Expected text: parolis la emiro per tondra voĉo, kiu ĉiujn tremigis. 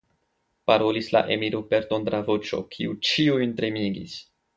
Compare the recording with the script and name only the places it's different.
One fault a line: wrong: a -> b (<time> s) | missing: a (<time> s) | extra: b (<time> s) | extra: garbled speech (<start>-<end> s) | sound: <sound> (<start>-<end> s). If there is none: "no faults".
no faults